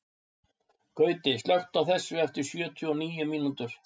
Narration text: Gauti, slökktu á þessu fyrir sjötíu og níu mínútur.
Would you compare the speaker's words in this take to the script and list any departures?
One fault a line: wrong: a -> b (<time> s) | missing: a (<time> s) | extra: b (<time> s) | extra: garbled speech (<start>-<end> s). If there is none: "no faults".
wrong: fyrir -> eftir (2.3 s)